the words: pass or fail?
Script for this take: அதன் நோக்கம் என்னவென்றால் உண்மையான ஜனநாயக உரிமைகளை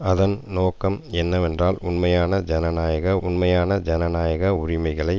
fail